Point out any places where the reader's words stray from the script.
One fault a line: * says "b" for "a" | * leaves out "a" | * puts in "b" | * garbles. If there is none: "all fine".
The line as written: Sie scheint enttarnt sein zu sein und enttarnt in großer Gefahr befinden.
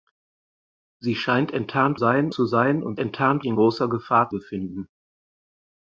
all fine